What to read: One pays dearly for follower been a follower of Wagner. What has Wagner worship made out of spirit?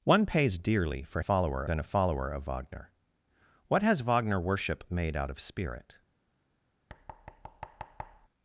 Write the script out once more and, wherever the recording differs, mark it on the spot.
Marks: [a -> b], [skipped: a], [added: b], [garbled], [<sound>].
One pays dearly for follower been a follower of Wagner. What has Wagner worship made out of spirit? [thud]